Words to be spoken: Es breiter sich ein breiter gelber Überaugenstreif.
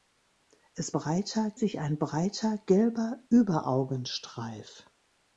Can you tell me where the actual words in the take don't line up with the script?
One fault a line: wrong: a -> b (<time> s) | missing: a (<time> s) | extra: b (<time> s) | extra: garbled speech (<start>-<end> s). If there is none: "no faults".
no faults